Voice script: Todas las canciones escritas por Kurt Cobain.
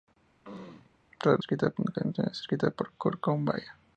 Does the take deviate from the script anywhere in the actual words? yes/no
yes